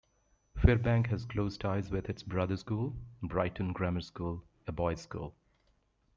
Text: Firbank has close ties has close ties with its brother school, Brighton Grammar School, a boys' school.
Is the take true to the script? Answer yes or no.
no